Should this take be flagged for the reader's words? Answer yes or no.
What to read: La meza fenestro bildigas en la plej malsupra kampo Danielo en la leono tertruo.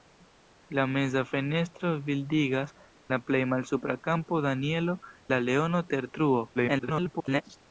yes